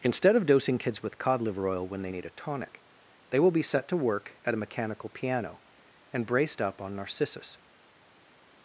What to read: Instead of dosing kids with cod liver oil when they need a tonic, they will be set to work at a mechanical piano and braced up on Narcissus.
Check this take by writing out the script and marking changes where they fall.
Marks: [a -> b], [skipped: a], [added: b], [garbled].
Instead of dosing kids with cod liver oil when they need a tonic, they will be set to work at a mechanical piano and braced up on Narcissus.